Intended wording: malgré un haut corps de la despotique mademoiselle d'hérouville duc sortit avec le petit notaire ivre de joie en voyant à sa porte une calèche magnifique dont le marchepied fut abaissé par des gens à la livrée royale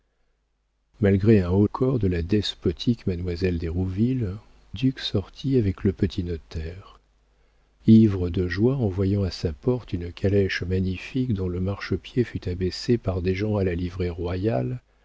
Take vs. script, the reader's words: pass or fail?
pass